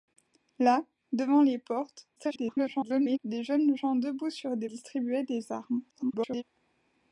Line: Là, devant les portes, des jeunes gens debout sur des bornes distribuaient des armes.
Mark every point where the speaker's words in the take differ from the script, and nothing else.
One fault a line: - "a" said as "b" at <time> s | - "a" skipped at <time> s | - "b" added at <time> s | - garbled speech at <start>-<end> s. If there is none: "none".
- garbled speech at 2.2-3.2 s
- "bornes" skipped at 4.7 s
- garbled speech at 5.9-6.4 s